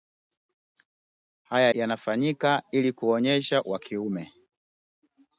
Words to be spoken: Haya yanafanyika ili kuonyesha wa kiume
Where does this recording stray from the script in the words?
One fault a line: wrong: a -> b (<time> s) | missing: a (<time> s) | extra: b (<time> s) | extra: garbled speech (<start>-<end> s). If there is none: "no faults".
no faults